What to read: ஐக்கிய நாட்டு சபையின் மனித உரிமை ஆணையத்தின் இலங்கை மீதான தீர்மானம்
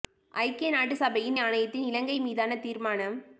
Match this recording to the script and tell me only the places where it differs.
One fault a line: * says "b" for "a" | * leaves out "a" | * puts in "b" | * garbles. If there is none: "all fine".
* leaves out "மனித உரிமை"